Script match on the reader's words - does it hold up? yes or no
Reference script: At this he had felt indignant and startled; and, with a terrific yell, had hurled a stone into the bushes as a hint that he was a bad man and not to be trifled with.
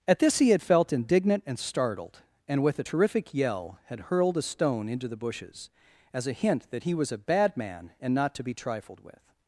yes